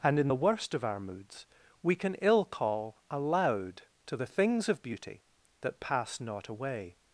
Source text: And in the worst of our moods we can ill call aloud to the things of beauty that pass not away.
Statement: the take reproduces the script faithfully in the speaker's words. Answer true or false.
true